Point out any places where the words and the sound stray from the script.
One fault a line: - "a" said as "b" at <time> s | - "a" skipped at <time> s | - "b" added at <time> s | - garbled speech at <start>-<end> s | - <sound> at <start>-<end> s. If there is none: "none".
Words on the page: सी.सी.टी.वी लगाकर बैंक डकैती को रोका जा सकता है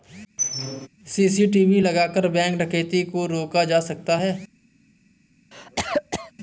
- squeak at 0.4-0.9 s
- cough at 5.5-6.3 s